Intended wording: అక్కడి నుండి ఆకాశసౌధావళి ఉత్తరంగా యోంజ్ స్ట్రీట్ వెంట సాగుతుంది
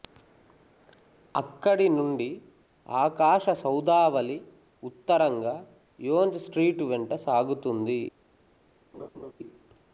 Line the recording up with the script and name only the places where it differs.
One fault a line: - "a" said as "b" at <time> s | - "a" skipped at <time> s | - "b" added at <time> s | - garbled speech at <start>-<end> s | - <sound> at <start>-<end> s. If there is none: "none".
- laugh at 8.9-9.3 s